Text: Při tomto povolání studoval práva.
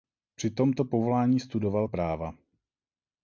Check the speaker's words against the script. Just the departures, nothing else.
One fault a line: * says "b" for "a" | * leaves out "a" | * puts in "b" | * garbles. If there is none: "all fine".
all fine